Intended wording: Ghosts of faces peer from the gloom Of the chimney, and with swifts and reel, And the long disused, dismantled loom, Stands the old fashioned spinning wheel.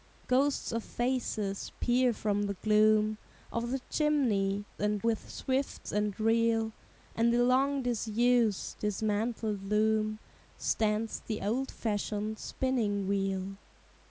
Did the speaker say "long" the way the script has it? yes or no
yes